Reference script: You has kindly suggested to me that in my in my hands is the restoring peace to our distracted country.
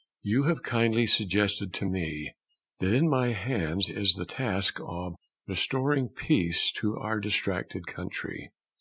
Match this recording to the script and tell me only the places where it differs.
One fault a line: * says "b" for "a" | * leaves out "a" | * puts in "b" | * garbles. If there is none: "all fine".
* says "have" for "has"
* leaves out "in my"
* puts in "task of"